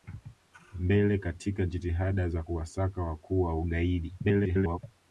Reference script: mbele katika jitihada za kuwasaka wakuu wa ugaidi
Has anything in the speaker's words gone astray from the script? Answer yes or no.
yes